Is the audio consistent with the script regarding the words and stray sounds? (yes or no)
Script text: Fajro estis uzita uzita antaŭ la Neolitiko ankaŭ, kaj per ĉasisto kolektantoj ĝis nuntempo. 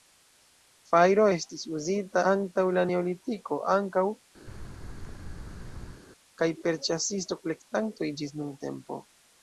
no